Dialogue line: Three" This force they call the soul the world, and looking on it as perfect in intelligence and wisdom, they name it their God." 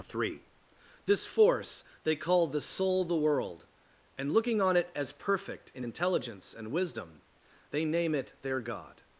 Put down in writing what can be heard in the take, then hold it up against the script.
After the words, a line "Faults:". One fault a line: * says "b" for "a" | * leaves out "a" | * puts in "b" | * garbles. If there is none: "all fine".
Three" This force they call the soul the world, and looking on it as perfect in intelligence and wisdom, they name it their God."
Faults:
all fine